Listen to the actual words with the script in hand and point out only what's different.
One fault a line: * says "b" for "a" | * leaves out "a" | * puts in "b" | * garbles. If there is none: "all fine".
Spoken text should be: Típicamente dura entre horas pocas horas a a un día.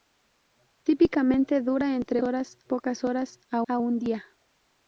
all fine